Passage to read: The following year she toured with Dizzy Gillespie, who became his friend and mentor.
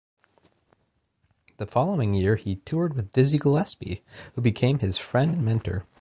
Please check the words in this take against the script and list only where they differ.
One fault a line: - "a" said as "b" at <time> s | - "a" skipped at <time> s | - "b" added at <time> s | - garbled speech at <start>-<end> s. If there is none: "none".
- "she" said as "he" at 2.4 s